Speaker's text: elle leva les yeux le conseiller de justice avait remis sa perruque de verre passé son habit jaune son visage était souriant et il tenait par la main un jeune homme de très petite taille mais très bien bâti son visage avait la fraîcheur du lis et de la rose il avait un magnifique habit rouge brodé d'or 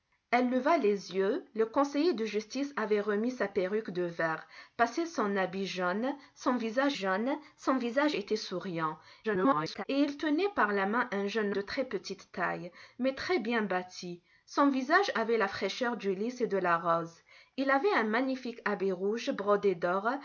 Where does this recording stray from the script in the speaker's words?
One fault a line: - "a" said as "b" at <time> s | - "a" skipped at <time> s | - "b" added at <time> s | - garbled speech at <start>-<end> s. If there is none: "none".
- "jaune son visage" added at 6.9 s
- garbled speech at 9.2-9.8 s
- "homme" skipped at 11.5 s